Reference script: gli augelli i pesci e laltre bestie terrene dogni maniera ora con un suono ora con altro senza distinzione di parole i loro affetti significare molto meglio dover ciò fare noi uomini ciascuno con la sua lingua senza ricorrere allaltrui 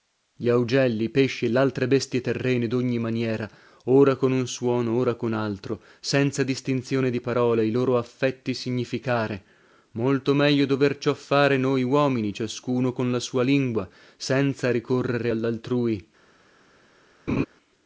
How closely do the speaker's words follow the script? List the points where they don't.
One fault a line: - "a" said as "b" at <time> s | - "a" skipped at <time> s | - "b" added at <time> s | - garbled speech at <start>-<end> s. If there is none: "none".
none